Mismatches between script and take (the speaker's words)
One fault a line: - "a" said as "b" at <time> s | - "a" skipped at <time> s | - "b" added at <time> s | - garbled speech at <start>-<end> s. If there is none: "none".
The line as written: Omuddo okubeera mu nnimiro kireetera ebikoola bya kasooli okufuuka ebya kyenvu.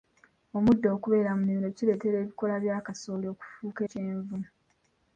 - "ebya" skipped at 3.8 s